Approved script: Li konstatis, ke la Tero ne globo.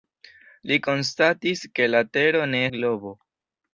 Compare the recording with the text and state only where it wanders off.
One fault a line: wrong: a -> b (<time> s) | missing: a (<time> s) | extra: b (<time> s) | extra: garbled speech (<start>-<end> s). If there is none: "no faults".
no faults